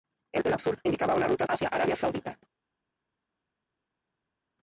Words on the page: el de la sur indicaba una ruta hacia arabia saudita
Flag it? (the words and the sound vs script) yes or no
no